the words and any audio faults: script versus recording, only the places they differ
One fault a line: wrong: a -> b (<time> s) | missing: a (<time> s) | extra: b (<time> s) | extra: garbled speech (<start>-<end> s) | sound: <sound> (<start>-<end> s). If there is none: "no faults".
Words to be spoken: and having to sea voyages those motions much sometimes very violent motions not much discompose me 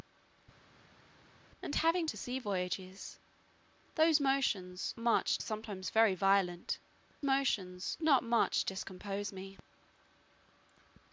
no faults